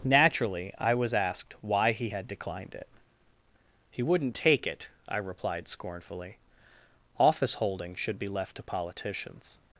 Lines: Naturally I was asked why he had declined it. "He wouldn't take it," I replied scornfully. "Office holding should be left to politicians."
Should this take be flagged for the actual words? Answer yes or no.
no